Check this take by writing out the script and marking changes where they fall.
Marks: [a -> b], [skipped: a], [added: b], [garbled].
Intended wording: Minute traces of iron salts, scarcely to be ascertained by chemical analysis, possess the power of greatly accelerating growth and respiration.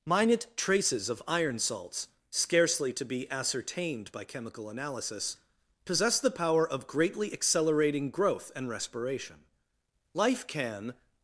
Minute traces of iron salts, scarcely to be ascertained by chemical analysis, possess the power of greatly accelerating growth and respiration. [added: Life can]